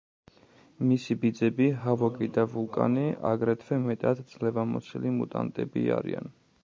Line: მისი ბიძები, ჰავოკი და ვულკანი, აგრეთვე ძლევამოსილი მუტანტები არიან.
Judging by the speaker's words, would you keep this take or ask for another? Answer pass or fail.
fail